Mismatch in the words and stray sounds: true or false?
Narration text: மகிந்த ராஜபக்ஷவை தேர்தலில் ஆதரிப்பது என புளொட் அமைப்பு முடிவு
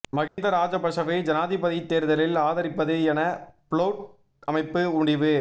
true